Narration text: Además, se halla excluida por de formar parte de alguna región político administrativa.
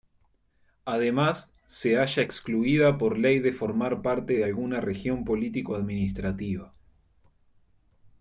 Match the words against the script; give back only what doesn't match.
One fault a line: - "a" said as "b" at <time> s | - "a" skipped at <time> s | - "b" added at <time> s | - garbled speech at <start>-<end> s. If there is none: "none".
- "ley" added at 3.2 s